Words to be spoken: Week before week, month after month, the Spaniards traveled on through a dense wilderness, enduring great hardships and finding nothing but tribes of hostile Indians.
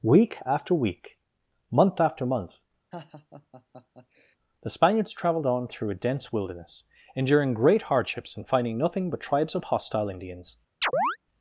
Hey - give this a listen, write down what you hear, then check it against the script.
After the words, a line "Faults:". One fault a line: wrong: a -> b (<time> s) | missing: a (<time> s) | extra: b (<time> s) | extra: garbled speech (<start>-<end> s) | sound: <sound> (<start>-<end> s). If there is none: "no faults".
Week after week, month after month, the Spaniards traveled on through a dense wilderness, enduring great hardships and finding nothing but tribes of hostile Indians.
Faults:
wrong: before -> after (0.5 s)
sound: laugh (2.9-4.4 s)
sound: chirp (10.8-11.2 s)